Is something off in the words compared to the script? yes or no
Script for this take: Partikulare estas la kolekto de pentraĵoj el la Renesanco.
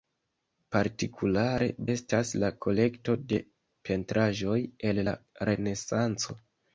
no